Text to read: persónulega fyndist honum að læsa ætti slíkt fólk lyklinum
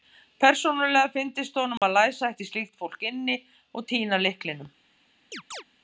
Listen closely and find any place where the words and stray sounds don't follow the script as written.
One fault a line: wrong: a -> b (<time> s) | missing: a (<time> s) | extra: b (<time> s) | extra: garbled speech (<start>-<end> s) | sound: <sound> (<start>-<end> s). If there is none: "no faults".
sound: dropout (1.8-1.8 s)
extra: inni og týna (3.1 s)
sound: chirp (5.3-5.6 s)